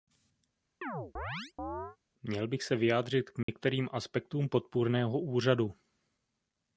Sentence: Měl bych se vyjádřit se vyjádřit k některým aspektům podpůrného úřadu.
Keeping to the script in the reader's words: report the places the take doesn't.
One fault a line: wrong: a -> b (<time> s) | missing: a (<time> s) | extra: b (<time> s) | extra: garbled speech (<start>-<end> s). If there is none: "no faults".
missing: se vyjádřit (3.3 s)